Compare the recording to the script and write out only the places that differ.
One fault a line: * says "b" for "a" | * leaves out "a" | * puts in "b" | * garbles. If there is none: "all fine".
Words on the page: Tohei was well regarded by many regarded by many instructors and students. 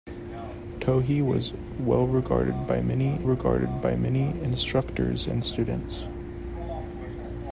all fine